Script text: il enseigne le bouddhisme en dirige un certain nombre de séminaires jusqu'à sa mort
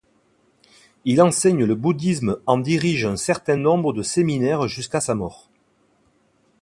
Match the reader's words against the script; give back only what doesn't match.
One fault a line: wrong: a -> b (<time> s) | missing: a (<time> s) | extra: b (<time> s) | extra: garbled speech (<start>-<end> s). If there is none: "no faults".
no faults